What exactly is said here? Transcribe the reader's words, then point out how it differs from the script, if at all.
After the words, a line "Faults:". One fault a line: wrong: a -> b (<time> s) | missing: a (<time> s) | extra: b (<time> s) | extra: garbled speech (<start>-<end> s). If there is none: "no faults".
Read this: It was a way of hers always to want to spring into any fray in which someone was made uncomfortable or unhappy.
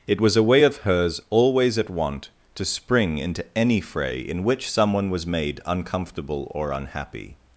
It was a way of hers always at want to spring into any fray in which someone was made uncomfortable or unhappy.
Faults:
wrong: to -> at (1.8 s)